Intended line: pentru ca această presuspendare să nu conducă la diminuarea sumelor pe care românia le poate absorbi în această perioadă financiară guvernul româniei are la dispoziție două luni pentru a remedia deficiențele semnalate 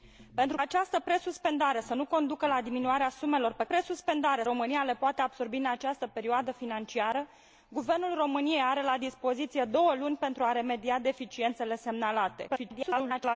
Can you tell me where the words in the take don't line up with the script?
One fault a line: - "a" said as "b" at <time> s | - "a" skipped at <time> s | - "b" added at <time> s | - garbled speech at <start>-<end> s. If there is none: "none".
- "ca" skipped at 0.6 s
- "care" said as "presuspendare" at 3.6 s
- garbled speech at 12.5-13.4 s